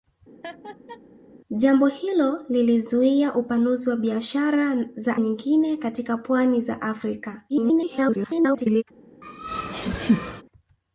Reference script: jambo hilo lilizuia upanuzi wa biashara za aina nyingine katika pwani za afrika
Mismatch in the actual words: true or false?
true